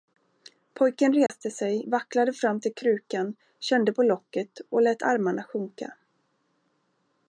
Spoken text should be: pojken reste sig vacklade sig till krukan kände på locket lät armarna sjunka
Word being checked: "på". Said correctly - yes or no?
yes